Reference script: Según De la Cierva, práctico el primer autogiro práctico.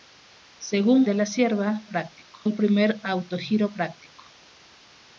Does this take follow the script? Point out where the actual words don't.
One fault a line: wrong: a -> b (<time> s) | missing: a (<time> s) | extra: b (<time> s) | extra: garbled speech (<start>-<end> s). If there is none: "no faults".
no faults